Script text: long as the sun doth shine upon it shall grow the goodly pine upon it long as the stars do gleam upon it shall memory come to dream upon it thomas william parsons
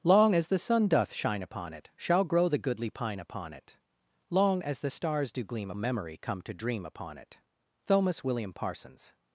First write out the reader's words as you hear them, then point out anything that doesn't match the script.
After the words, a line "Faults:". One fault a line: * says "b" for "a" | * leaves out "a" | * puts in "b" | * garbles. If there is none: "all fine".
long as the sun doth shine upon it shall grow the goodly pine upon it long as the stars do gleam memory come to dream upon it thomas william parsons
Faults:
* leaves out "upon it shall"